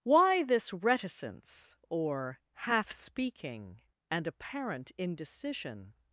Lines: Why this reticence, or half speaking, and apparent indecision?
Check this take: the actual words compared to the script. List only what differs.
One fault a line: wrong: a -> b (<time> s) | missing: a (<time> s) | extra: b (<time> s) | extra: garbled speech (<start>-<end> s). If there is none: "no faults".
no faults